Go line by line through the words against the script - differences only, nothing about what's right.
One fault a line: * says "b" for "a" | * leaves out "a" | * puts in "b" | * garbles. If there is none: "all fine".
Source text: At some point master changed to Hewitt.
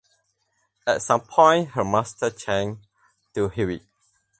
* puts in "her"